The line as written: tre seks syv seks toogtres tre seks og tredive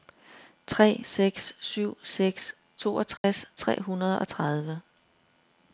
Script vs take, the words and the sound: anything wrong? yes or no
yes